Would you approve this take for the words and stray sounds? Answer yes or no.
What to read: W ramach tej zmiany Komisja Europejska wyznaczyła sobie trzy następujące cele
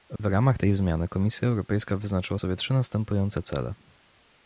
no